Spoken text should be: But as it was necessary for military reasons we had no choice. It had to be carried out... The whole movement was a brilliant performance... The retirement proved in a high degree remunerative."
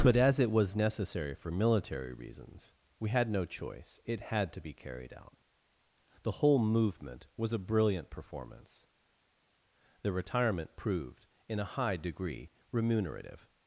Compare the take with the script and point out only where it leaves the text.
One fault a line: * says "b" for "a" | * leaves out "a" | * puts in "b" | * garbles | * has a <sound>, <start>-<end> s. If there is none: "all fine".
all fine